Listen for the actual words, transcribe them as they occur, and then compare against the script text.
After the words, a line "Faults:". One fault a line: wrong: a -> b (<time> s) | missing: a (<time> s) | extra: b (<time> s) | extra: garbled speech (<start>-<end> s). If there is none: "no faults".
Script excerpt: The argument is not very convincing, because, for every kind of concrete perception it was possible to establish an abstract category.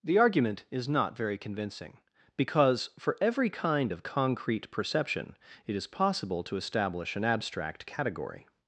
The argument is not very convincing, because, for every kind of concrete perception it is possible to establish an abstract category.
Faults:
wrong: was -> is (5.7 s)